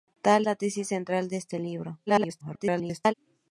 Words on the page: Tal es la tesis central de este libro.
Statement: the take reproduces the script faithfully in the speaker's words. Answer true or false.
false